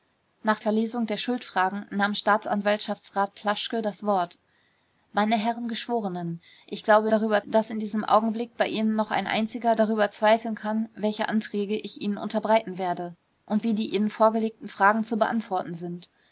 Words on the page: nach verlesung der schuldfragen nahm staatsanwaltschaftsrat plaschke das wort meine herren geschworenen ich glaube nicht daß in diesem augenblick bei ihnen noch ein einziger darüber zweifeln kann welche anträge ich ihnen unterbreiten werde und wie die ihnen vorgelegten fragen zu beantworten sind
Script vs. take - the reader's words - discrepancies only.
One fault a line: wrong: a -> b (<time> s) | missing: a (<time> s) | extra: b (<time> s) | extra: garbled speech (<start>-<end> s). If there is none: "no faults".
wrong: nicht -> darüber (7.1 s)